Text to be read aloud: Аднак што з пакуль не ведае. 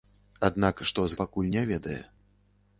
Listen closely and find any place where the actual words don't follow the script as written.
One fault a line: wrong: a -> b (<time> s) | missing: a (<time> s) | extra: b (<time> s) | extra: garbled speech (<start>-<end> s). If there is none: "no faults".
no faults